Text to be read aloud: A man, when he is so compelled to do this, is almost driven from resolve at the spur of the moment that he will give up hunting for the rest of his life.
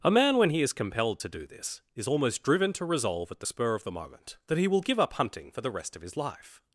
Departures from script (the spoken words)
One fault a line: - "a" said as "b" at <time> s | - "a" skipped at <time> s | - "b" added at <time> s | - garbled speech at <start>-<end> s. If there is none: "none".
- "so" skipped at 0.7 s
- "from" said as "to" at 2.7 s